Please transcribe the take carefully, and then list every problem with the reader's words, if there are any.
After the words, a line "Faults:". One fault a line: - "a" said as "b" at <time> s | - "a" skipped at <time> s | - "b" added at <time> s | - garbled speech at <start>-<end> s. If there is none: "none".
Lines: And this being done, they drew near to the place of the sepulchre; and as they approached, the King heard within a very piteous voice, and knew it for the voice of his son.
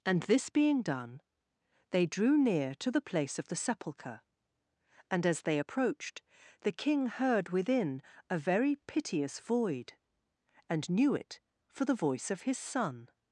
And this being done, they drew near to the place of the sepulchre; and as they approached, the King heard within a very piteous void, and knew it for the voice of his son.
Faults:
- "voice" said as "void" at 9.4 s